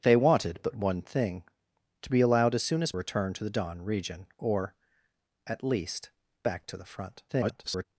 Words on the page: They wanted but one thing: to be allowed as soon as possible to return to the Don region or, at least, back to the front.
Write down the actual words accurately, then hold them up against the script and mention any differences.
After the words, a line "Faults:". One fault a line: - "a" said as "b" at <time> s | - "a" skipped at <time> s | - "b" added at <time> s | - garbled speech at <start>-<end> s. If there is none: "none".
They wanted but one thing: to be allowed as soon as return to the Don region or, at least, back to the front. [garbled]
Faults:
- "possible to" skipped at 2.9 s
- garbled speech at 7.3-7.9 s